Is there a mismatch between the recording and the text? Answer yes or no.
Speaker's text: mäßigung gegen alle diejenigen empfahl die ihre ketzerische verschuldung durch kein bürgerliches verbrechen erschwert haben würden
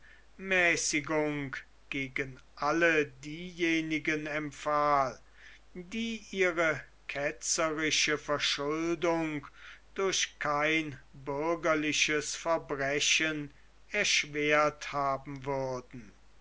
no